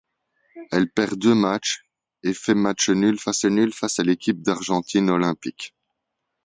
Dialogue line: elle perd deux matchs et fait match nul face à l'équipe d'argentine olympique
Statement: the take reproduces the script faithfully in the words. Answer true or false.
false